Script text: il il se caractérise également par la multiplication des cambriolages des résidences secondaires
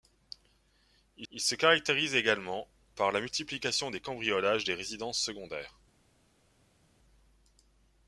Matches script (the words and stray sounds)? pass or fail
pass